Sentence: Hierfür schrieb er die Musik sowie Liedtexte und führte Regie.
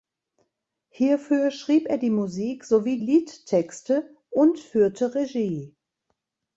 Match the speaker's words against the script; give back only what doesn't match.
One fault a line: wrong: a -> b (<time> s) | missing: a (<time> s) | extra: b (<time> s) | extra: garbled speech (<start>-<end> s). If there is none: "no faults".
no faults